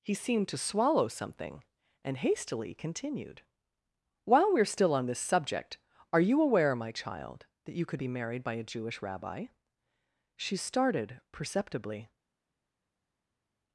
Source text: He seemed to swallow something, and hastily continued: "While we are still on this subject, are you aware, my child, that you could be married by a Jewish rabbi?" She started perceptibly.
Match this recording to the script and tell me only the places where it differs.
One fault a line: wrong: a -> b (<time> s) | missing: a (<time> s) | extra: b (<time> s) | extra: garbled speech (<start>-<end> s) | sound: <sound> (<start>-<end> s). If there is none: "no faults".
no faults